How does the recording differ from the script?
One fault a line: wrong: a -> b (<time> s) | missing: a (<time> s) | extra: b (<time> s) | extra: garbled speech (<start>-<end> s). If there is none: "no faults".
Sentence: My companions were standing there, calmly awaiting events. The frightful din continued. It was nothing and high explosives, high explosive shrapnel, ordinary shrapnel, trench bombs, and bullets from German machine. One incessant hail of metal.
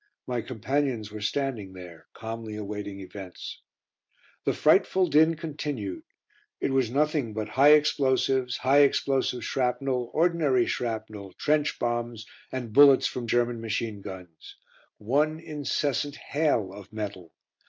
wrong: and -> but (7.3 s)
extra: guns (14.0 s)